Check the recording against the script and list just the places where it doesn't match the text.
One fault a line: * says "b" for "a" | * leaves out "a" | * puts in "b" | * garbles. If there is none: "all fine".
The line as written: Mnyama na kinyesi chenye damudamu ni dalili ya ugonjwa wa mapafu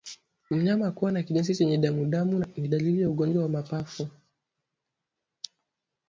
* puts in "kuwa"